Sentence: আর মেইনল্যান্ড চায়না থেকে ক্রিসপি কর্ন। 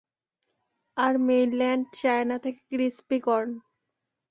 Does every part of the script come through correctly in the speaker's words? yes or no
yes